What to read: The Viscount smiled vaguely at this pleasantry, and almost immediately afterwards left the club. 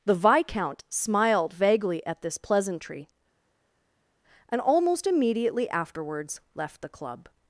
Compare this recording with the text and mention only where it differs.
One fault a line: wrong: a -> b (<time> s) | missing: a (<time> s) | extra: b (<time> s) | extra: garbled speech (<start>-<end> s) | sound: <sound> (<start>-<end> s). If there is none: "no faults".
no faults